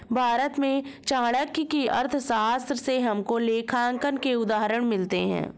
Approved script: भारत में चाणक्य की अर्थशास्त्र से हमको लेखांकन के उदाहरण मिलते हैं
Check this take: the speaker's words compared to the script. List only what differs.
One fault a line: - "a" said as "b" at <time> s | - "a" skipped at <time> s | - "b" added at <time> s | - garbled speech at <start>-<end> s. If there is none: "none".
none